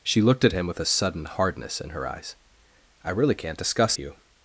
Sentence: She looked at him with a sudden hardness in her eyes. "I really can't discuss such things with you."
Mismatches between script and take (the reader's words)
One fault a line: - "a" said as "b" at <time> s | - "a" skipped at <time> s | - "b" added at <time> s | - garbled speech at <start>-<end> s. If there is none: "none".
- "such things with" skipped at 3.9 s